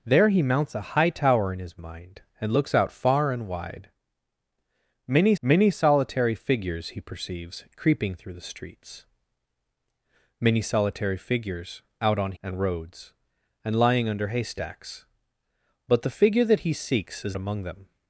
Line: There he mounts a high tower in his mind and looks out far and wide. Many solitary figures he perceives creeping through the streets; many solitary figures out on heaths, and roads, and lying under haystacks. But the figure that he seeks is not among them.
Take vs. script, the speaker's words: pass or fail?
fail